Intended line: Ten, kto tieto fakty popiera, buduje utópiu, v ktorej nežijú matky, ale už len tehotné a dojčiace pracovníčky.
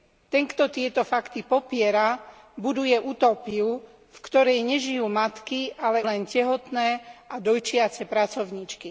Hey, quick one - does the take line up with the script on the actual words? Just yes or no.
no